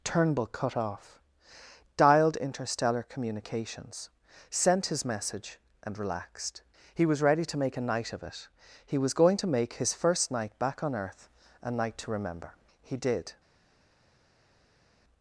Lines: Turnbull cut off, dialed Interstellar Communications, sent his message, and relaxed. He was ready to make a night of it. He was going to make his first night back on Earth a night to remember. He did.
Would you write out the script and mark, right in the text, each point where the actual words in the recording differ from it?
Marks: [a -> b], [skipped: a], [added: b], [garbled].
Turnbull cut off, dialed Interstellar Communications, sent his message, and relaxed. He was ready to make a night of it. He was going to make his first night back on Earth a night to remember. He did.